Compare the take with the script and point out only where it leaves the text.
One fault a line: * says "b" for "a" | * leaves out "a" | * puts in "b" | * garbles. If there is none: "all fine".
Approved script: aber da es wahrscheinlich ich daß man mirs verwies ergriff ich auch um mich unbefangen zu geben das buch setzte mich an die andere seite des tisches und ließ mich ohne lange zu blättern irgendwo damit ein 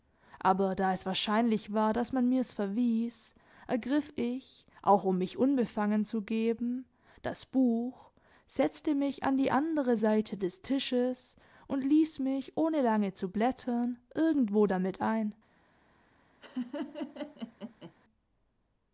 * says "war" for "ich"